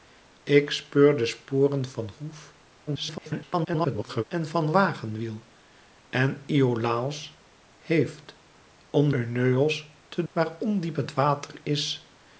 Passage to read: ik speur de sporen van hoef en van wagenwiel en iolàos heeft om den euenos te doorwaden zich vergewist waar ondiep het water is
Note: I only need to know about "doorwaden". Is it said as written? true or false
false